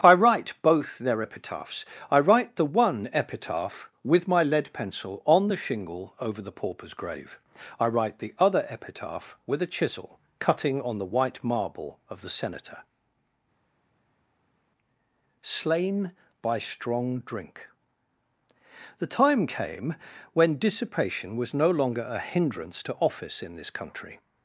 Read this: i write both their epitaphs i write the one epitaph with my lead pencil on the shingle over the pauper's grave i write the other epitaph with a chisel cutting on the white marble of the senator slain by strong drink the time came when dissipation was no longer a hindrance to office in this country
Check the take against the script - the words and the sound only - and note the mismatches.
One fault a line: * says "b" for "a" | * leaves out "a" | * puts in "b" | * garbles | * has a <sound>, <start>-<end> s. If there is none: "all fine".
all fine